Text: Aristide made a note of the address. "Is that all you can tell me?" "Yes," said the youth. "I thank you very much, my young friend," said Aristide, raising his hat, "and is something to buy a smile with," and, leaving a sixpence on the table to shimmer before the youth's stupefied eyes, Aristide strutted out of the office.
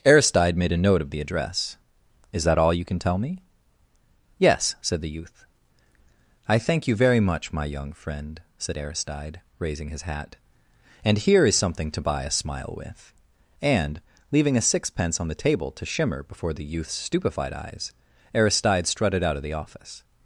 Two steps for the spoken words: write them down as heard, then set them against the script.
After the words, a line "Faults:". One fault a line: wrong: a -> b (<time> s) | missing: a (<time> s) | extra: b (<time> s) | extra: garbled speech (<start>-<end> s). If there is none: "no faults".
Aristide made a note of the address. "Is that all you can tell me?" "Yes," said the youth. "I thank you very much, my young friend," said Aristide, raising his hat, "and here is something to buy a smile with," and, leaving a sixpence on the table to shimmer before the youth's stupefied eyes, Aristide strutted out of the office.
Faults:
extra: here (11.2 s)